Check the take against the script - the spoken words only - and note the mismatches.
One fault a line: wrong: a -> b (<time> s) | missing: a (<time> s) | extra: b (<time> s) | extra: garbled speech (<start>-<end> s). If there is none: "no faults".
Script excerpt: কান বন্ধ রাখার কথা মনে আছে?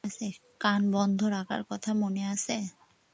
no faults